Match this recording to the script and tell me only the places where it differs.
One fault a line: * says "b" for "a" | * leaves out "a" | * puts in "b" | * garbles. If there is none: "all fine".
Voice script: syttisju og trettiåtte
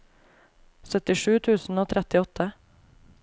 * puts in "tusen"